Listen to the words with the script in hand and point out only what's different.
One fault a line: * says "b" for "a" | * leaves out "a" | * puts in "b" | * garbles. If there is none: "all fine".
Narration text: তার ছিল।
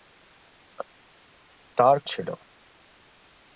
all fine